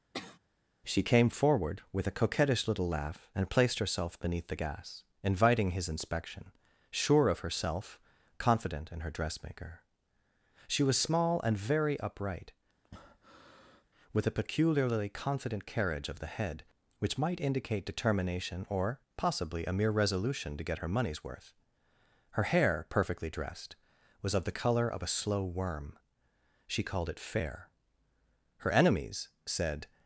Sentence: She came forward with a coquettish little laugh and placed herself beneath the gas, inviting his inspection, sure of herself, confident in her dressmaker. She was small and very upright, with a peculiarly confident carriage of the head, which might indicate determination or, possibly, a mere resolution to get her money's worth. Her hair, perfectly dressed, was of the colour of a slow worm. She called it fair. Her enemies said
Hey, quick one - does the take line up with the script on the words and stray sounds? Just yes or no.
no